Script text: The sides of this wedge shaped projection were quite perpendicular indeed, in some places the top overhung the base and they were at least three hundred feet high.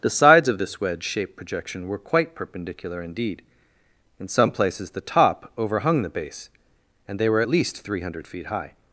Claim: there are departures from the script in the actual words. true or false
false